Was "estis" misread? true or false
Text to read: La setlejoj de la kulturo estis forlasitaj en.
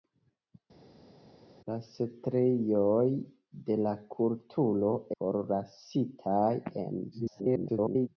true